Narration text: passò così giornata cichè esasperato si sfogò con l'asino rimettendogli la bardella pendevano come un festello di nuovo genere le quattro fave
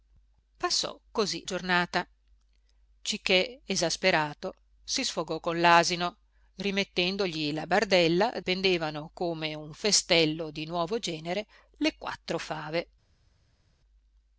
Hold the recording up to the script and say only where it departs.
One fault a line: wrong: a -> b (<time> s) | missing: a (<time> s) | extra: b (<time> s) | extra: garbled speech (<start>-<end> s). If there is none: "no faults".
no faults